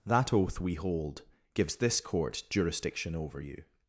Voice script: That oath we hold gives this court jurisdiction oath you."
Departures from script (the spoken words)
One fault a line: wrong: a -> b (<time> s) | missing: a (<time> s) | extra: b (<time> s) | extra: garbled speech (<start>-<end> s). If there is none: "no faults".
wrong: oath -> over (3.1 s)